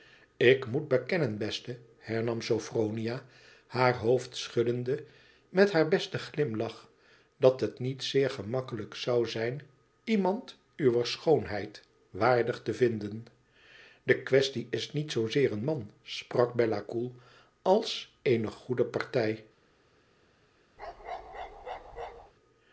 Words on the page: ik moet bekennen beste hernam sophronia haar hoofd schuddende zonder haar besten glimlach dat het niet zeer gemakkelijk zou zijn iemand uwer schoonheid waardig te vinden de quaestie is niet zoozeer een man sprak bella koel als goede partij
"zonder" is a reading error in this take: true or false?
true